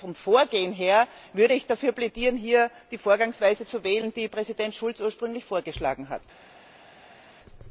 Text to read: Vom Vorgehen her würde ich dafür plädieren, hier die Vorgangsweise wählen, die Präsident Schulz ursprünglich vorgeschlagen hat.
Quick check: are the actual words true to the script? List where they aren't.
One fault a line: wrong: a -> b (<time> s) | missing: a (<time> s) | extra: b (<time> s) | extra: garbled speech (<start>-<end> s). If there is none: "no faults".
extra: zu (3.6 s)